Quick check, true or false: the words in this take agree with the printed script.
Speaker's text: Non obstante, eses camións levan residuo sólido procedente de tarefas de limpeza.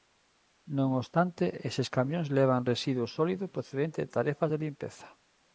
true